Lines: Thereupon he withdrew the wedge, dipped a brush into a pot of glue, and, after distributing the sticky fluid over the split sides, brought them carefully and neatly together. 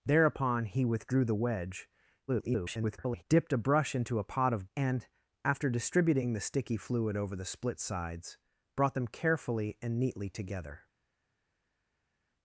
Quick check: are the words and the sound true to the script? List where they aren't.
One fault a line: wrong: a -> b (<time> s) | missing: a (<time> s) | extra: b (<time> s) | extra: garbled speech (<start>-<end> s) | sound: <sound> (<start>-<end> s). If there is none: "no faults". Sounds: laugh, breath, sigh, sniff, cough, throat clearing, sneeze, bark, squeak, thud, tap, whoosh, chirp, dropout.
extra: garbled speech (2.3-3.2 s)
missing: glue (4.7 s)